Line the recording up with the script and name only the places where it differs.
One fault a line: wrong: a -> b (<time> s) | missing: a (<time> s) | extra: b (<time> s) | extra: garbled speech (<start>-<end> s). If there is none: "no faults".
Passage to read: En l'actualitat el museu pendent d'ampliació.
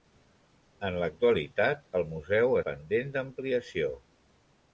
no faults